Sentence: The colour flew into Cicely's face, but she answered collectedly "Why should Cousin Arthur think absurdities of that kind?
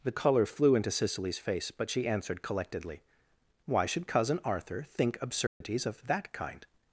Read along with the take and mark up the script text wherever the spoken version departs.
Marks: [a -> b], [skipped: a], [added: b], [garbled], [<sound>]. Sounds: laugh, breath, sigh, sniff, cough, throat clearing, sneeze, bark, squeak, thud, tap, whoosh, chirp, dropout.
The colour flew into Cicely's face, but she answered collectedly "Why should Cousin Arthur think absurdities [dropout] of that kind?